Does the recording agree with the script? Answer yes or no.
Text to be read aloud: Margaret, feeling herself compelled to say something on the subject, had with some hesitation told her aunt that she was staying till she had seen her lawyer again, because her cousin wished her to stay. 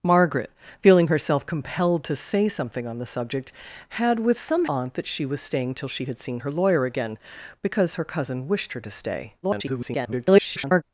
no